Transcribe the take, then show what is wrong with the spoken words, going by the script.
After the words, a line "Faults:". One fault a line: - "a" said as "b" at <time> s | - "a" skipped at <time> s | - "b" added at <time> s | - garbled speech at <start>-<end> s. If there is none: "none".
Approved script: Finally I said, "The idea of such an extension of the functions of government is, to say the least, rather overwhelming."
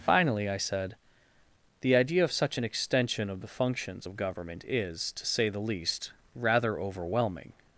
Finally I said, "The idea of such an extension of the functions of government is, to say the least, rather overwhelming."
Faults:
none